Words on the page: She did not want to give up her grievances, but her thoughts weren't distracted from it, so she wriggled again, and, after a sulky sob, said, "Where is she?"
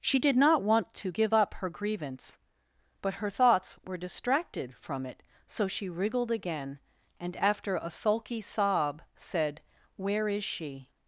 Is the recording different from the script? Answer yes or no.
yes